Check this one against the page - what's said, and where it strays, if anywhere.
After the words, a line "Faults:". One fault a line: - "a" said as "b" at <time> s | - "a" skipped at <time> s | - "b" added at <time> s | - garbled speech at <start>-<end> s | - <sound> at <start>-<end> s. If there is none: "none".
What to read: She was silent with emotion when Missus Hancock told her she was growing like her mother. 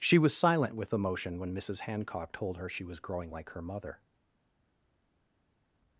She was silent with emotion when Missus Hancock told her she was growing like her mother.
Faults:
none